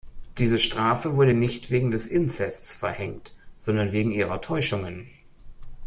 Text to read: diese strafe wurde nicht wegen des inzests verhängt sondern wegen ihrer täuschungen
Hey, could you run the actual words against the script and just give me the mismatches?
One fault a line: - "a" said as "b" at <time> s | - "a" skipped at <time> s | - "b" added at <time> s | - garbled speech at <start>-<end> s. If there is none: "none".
none